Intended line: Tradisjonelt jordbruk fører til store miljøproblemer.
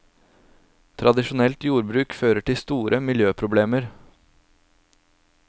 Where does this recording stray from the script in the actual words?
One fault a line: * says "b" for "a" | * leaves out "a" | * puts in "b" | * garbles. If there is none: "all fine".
all fine